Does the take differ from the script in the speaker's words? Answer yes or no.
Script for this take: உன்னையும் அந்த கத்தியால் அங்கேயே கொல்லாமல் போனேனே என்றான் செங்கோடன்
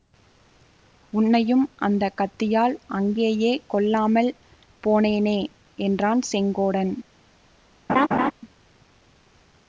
no